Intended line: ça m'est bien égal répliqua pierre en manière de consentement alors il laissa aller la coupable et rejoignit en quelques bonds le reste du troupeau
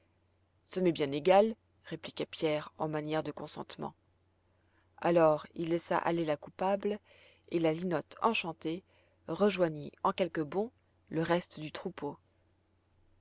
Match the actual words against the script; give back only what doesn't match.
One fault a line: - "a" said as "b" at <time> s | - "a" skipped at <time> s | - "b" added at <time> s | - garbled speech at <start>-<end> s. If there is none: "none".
- "la linotte enchantée" added at 7.6 s